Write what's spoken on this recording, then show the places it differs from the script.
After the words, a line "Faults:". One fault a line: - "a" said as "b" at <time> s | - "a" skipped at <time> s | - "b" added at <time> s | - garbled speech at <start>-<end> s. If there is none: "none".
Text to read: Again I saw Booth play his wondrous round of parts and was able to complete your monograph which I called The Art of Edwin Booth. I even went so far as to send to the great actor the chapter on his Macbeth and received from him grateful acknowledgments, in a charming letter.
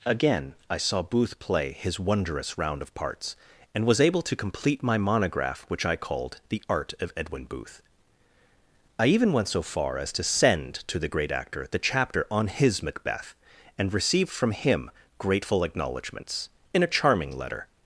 Again I saw Booth play his wondrous round of parts and was able to complete my monograph which I called The Art of Edwin Booth. I even went so far as to send to the great actor the chapter on his Macbeth and received from him grateful acknowledgments, in a charming letter.
Faults:
- "your" said as "my" at 4.8 s